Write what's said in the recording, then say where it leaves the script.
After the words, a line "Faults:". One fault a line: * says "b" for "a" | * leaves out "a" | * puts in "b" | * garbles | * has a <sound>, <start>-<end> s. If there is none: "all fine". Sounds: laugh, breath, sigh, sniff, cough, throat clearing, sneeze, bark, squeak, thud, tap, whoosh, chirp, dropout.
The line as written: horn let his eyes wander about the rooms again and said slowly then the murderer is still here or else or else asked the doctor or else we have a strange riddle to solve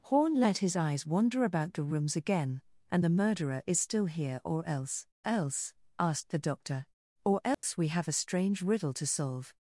horn let his eyes wander about the rooms again and the murderer is still here or else else asked the doctor or else we have a strange riddle to solve
Faults:
* leaves out "said slowly then"
* leaves out "or"
* has a dropout, 7.5-7.6 s